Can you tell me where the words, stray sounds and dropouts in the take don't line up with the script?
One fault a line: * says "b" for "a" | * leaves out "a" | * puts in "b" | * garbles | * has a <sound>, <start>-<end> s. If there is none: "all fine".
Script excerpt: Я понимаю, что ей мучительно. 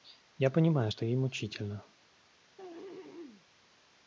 * has a throat clearing, 2.6-3.5 s